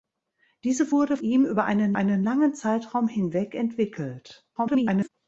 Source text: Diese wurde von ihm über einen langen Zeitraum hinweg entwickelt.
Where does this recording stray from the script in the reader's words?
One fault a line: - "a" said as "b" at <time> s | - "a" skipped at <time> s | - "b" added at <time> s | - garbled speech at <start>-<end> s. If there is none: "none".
- "von" skipped at 1.2 s
- "einen" added at 1.9 s
- garbled speech at 4.6-5.1 s